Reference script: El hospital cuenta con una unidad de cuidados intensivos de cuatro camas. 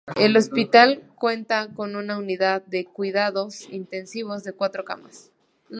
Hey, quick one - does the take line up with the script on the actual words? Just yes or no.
yes